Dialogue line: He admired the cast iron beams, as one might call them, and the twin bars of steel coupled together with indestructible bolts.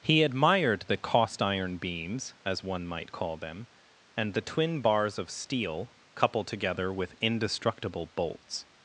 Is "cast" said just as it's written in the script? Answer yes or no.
no